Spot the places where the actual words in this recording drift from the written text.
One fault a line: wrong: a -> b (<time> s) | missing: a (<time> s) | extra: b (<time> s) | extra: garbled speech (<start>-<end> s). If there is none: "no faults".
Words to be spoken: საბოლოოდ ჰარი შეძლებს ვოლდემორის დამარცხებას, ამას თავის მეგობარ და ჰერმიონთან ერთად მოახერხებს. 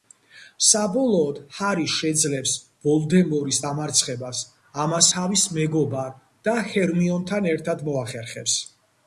no faults